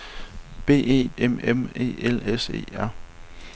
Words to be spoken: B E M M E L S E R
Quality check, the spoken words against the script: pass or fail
pass